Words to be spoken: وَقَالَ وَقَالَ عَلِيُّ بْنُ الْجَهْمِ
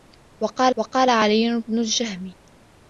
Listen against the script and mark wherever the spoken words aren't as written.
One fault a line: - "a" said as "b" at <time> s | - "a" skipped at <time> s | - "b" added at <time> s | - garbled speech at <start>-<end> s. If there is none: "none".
none